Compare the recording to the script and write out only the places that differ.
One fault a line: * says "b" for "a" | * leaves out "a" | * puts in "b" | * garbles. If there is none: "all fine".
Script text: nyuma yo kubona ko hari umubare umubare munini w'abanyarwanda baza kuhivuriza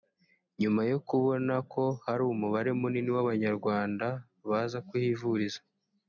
* leaves out "umubare"